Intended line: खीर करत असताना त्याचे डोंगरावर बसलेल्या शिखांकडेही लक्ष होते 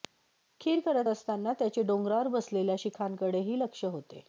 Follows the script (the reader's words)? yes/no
yes